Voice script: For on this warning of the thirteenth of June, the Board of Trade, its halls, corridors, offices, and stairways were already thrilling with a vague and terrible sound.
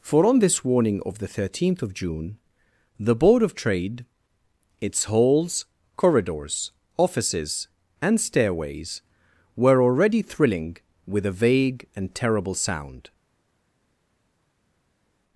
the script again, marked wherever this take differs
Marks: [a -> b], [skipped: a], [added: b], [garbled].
For on this warning of the thirteenth of June, the Board of Trade, its halls, corridors, offices, and stairways were already thrilling with a vague and terrible sound.